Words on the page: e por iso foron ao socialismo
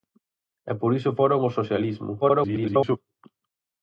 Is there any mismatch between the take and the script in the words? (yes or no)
yes